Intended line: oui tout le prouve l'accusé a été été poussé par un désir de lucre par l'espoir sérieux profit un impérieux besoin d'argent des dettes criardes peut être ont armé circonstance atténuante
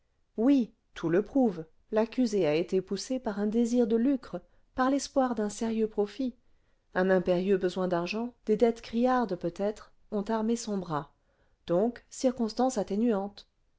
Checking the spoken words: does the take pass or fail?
fail